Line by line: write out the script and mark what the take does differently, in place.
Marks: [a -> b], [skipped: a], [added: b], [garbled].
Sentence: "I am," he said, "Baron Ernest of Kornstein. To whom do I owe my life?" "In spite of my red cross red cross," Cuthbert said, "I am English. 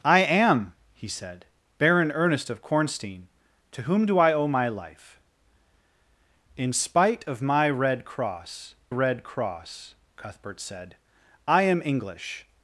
"I am," he said, "Baron Ernest of Kornstein. To whom do I owe my life?" "In spite of my red cross red cross," Cuthbert said, "I am English.